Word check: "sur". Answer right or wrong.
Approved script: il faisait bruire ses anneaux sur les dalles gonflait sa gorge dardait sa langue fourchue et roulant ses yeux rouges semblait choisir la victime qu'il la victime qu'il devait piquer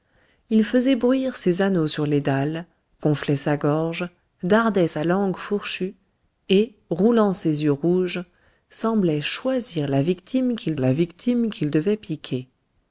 right